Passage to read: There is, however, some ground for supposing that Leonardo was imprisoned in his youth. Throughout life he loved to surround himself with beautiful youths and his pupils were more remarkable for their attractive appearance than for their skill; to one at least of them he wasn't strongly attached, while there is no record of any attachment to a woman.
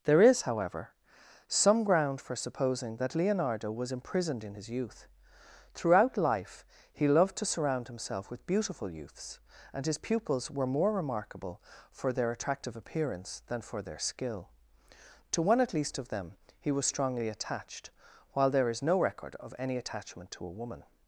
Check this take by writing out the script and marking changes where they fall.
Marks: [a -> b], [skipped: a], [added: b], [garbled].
There is, however, some ground for supposing that Leonardo was imprisoned in his youth. Throughout life he loved to surround himself with beautiful youths and his pupils were more remarkable for their attractive appearance than for their skill; to one at least of them he [wasn't -> was] strongly attached, while there is no record of any attachment to a woman.